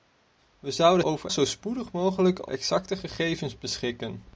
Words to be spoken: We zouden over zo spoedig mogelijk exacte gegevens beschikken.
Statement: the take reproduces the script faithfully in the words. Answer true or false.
true